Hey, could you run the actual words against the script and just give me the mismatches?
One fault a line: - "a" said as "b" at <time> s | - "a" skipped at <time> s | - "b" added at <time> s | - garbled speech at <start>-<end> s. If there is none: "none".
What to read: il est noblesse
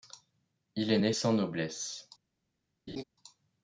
- "né sans" added at 0.9 s